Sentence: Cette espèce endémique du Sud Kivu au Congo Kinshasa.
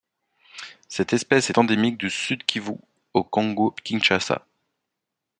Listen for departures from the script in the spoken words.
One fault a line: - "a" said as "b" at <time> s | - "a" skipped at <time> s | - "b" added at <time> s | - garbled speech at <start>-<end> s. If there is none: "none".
none